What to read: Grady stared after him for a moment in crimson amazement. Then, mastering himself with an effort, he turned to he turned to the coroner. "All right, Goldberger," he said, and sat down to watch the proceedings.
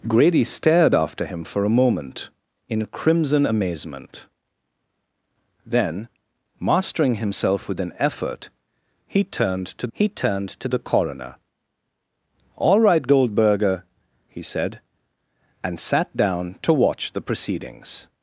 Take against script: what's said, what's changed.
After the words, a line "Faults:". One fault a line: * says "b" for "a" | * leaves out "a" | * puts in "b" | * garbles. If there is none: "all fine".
Grady stared after him for a moment in crimson amazement. Then, mastering himself with an effort, he turned to he turned to the coroner. "All right, Goldberger," he said, and sat down to watch the proceedings.
Faults:
all fine